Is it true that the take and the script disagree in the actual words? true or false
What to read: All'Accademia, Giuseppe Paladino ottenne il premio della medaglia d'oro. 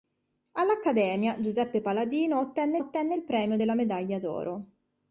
true